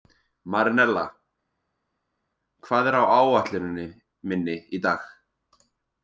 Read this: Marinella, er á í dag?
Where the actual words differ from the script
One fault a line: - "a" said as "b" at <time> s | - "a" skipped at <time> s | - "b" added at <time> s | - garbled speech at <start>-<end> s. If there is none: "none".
- "hvað" added at 2.7 s
- "áætluninni minni" added at 3.2 s